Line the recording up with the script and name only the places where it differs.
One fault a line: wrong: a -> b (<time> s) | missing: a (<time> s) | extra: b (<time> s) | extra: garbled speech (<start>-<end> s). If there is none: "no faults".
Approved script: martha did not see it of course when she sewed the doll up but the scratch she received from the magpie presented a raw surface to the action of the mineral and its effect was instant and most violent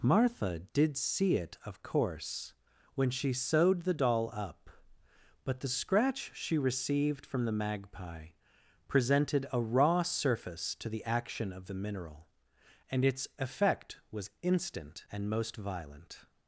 missing: not (1.0 s)